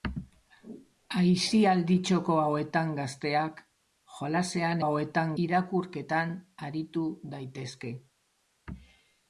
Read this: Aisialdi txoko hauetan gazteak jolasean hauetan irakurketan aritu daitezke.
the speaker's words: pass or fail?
pass